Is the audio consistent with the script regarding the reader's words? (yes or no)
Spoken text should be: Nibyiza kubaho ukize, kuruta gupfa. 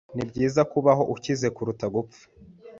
yes